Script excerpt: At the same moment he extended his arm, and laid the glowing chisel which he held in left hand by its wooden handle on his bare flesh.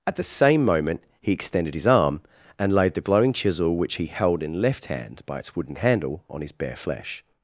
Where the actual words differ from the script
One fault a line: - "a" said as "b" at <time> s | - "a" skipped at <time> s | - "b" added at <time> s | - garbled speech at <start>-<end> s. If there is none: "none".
none